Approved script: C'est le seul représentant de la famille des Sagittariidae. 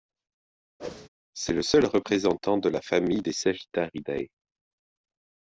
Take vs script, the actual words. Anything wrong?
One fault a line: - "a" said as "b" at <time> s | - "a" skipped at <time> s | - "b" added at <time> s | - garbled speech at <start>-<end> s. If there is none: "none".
none